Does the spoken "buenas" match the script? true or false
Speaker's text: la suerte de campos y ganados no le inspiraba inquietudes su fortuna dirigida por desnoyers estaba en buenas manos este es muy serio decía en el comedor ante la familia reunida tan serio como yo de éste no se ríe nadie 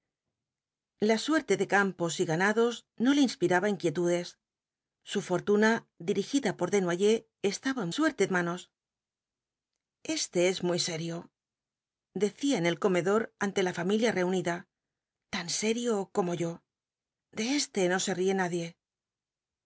false